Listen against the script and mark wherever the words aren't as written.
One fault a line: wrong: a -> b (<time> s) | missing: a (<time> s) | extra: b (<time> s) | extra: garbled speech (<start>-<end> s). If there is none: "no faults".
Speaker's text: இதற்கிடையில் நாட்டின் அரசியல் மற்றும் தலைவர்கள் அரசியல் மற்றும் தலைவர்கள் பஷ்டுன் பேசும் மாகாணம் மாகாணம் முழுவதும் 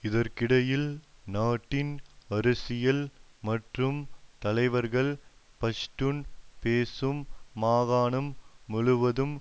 missing: அரசியல் மற்றும் தலைவர்கள் (5.1 s)
missing: மாகாணம் (8.3 s)